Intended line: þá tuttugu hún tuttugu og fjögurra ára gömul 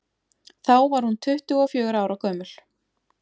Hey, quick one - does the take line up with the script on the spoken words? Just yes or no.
no